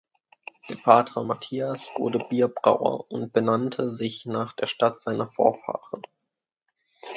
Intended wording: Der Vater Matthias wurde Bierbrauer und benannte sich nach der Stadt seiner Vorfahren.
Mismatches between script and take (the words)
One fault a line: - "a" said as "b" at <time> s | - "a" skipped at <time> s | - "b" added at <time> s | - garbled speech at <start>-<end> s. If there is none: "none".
none